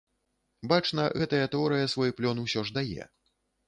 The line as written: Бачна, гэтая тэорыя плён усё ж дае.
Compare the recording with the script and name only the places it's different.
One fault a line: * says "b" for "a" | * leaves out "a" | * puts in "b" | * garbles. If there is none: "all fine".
* puts in "свой"